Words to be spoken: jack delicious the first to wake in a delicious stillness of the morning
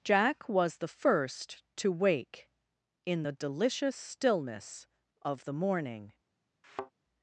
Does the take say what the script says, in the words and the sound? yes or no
no